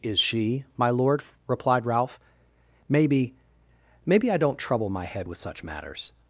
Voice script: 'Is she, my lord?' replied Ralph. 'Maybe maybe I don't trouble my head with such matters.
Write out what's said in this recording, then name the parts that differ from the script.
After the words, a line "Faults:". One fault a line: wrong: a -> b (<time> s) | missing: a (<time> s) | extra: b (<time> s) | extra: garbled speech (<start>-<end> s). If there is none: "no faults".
'Is she, my lord?' replied Ralph. 'Maybe maybe I don't trouble my head with such matters.
Faults:
no faults